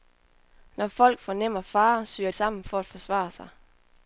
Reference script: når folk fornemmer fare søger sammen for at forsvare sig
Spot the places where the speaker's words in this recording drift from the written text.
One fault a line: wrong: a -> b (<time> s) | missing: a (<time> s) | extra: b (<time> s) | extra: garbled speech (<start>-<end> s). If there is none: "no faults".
no faults